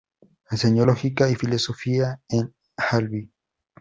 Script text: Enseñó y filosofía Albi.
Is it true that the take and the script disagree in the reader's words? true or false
true